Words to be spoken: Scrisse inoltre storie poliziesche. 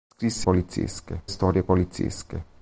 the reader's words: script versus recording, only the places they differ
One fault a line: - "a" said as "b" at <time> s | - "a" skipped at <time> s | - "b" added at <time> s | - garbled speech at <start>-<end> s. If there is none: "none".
- "inoltre" said as "poliziesche" at 0.4 s